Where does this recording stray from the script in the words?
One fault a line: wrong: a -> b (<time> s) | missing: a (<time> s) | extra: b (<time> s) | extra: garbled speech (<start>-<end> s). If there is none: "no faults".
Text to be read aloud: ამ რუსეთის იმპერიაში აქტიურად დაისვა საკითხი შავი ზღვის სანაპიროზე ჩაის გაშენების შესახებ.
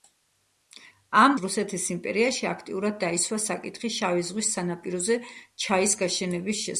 no faults